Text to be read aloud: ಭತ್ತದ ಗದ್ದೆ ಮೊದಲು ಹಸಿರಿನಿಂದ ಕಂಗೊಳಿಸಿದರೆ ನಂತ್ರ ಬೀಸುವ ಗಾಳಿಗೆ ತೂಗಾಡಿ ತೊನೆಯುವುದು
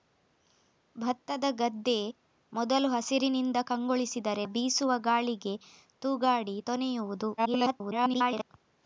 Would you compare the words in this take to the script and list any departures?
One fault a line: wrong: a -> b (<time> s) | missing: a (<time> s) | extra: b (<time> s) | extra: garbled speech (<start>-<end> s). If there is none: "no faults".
missing: ನಂತ್ರ (4.5 s)
extra: garbled speech (7.4-8.5 s)